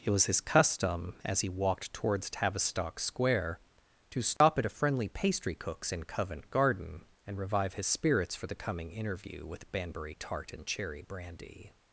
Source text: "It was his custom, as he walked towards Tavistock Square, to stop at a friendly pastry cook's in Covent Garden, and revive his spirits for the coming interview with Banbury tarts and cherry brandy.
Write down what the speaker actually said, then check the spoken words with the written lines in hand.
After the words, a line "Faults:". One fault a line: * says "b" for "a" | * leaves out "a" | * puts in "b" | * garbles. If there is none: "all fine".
"It was his custom, as he walked towards Tavistock Square, to stop at a friendly pastry cook's in Covent Garden, and revive his spirits for the coming interview with Banbury tart and cherry brandy.
Faults:
* says "tart" for "tarts"